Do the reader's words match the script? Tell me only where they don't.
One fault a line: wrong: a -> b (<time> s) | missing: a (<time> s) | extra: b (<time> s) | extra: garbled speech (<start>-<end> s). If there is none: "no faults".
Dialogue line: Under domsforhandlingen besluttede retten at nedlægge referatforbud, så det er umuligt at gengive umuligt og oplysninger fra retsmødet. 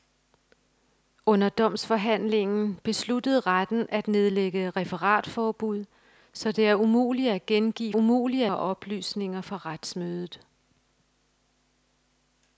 no faults